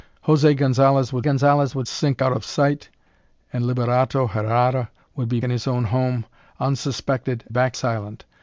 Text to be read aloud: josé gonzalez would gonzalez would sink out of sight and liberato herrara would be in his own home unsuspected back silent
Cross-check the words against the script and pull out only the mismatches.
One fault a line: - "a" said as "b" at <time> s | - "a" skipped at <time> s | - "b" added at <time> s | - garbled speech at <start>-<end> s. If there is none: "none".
none